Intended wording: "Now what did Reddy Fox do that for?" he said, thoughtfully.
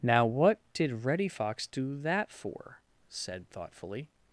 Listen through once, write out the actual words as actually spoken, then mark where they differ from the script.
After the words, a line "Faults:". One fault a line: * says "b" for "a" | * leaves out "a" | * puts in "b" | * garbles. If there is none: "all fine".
"Now what did Reddy Fox do that for?" said, thoughtfully.
Faults:
* leaves out "he"